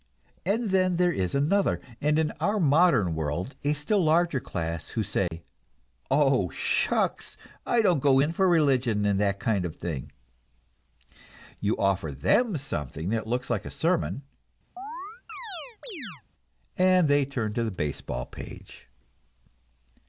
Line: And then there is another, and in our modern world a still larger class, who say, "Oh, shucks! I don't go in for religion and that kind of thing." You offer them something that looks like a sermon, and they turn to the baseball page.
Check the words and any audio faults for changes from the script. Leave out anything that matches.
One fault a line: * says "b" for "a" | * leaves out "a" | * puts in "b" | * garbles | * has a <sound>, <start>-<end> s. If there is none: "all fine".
* has a dropout, 5.3-5.3 s
* has a chirp, 14.8-16.2 s